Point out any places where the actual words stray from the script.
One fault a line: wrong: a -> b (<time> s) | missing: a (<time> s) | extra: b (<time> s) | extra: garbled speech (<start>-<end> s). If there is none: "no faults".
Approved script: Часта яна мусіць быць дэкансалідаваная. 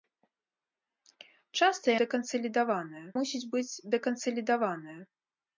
wrong: яна -> дэкансалідаваная (2.0 s)